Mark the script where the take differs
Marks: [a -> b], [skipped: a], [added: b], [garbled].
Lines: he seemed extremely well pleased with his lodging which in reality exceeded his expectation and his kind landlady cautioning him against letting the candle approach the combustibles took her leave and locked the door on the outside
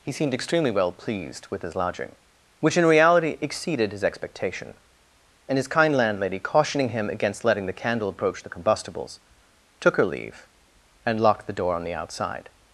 he seemed extremely well pleased with his lodging which in reality exceeded his expectation and his kind landlady cautioning him against letting the candle approach the combustibles took her leave and locked the door on the outside